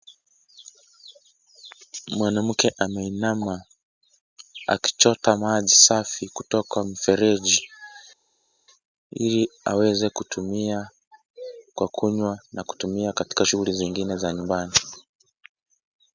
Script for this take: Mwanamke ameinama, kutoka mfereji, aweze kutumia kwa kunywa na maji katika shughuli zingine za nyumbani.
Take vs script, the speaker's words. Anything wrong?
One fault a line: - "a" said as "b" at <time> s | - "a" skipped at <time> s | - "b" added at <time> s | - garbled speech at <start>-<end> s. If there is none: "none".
- "akichota maji safi" added at 4.7 s
- "ili" added at 9.1 s
- "maji" said as "kutumia" at 12.6 s